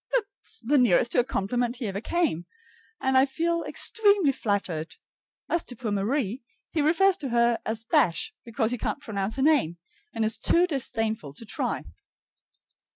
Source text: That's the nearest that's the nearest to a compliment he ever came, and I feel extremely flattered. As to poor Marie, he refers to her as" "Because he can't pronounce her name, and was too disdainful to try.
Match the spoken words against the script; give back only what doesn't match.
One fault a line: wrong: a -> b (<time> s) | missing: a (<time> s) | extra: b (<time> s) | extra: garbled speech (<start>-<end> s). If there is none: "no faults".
missing: that's the nearest (1.1 s)
extra: Bash (7.8 s)
wrong: was -> is (10.2 s)